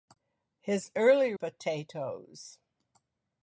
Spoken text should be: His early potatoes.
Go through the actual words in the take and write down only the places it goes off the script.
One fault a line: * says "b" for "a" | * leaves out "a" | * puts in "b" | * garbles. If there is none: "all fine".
all fine